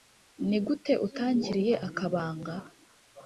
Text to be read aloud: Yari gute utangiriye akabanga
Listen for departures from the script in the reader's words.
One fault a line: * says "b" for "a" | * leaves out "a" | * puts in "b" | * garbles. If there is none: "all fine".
* says "Ni" for "Yari"